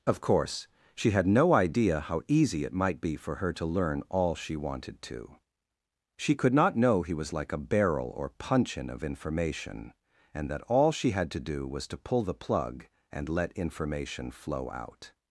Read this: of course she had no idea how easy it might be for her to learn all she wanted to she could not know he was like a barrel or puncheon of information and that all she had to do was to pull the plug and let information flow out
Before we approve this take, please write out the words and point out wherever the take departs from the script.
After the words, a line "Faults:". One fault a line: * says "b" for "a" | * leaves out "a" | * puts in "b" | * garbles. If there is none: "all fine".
of course she had no idea how easy it might be for her to learn all she wanted to she could not know he was like a barrel or puncheon of information and that all she had to do was to pull the plug and let information flow out
Faults:
all fine